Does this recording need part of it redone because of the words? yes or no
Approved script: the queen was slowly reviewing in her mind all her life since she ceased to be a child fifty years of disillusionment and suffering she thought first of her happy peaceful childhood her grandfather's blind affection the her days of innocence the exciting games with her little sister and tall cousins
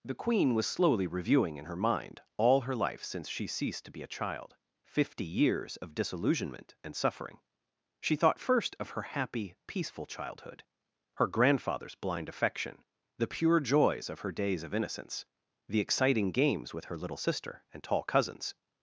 yes